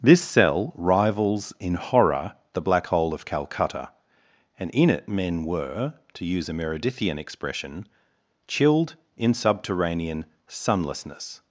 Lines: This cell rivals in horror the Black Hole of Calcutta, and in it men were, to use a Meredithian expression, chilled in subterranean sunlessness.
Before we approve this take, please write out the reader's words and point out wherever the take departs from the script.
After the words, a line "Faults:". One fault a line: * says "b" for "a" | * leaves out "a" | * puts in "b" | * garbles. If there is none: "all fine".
This cell rivals in horror the Black Hole of Calcutta, and in it men were, to use a Meredithian expression, chilled in subterranean sunlessness.
Faults:
all fine